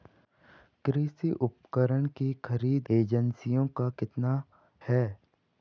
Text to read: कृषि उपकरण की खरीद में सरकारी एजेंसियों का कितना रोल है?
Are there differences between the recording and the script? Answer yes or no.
yes